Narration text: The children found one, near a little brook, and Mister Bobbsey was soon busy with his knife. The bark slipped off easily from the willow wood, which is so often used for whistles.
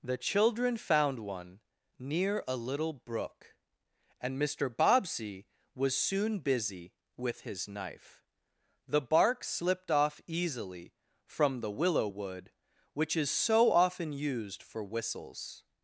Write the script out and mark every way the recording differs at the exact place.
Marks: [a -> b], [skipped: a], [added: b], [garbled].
The children found one, near a little brook, and Mister Bobbsey was soon busy with his knife. The bark slipped off easily from the willow wood, which is so often used for whistles.